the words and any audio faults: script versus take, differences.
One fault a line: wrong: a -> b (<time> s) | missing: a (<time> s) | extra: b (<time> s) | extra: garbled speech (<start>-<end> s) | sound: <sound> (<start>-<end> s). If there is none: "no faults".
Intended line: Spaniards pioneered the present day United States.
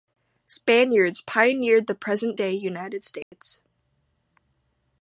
sound: dropout (3.2-3.3 s)